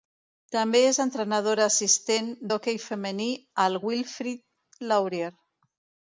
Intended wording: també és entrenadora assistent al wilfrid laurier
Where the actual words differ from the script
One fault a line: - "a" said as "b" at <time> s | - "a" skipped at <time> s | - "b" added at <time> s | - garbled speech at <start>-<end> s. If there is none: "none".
- "d'hoquei femení" added at 2.5 s